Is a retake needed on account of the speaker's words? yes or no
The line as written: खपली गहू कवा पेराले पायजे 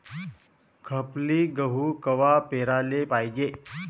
no